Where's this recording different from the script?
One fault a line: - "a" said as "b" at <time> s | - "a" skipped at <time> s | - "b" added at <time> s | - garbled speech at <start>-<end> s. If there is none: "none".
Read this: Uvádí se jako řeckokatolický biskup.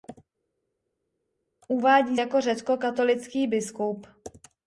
- "se" skipped at 2.2 s